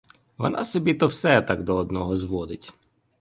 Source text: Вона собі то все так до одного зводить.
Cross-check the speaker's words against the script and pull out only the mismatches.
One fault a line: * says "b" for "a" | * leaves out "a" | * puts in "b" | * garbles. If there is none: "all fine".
all fine